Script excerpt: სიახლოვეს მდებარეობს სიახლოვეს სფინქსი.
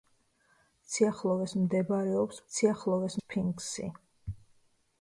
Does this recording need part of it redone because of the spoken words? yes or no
no